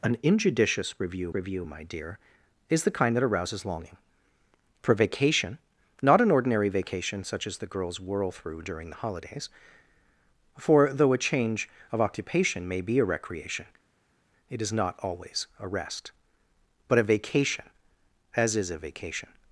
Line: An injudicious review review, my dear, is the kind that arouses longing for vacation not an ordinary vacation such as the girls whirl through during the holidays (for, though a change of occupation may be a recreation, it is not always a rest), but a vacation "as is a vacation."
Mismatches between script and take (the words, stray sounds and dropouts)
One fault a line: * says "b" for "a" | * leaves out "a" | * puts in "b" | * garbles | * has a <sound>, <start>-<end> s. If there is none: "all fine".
all fine